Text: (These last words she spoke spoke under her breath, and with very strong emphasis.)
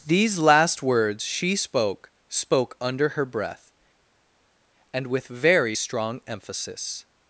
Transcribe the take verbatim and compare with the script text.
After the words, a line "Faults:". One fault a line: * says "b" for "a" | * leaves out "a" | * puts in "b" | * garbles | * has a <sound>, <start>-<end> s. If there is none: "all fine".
(These last words she spoke spoke under her breath, and with very strong emphasis.)
Faults:
all fine